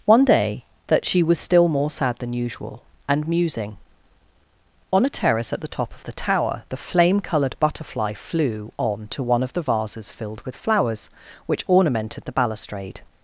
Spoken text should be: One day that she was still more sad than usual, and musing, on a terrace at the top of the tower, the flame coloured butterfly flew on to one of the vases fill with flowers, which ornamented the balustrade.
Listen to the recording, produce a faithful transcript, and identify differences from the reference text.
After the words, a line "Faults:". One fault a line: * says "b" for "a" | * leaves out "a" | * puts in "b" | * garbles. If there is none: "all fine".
One day that she was still more sad than usual, and musing, on a terrace at the top of the tower, the flame coloured butterfly flew on to one of the vases filled with flowers, which ornamented the balustrade.
Faults:
* says "filled" for "fill"